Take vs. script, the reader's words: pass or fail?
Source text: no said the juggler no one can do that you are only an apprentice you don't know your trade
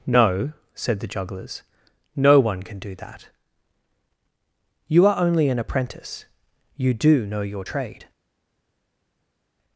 fail